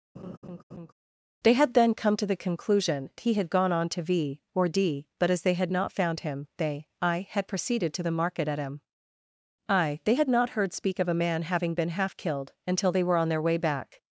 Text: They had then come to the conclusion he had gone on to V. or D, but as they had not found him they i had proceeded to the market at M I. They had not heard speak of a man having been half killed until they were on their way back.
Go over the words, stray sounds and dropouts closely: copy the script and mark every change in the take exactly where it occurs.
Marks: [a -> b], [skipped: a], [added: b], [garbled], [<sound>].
[laugh] They had then come to the conclusion he had gone on to V. or D, but as they had not found him they i had proceeded to the market at M I. They had not heard speak of a man having been half killed until they were on their way back.